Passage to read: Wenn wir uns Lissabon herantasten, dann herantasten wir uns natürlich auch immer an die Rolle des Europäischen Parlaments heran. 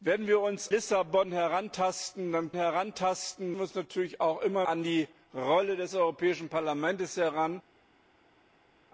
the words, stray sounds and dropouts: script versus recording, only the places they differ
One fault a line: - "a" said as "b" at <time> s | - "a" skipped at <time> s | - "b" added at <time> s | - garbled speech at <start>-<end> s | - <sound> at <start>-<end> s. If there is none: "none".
none